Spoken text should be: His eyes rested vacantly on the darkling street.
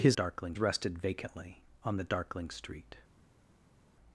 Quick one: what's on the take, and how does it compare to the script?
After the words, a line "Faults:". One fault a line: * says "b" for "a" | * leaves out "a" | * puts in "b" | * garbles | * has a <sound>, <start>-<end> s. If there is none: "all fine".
His darkling rested vacantly on the darkling street.
Faults:
* says "darkling" for "eyes"